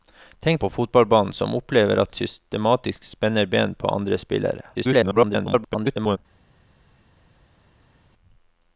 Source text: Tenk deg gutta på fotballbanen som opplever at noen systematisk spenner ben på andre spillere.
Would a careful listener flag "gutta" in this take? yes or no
yes